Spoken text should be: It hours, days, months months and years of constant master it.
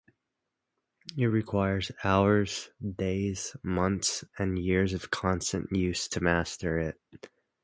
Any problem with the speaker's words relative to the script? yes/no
yes